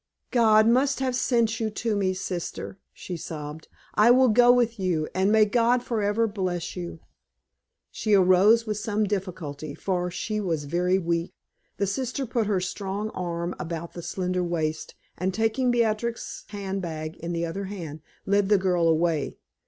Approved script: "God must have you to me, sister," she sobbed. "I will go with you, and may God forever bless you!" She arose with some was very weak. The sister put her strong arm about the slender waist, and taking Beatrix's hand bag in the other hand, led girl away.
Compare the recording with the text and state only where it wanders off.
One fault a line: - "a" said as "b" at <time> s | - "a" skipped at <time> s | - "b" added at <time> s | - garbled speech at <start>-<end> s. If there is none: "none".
- "sent" added at 1.1 s
- "difficulty for she" added at 9.0 s
- "the" added at 18.5 s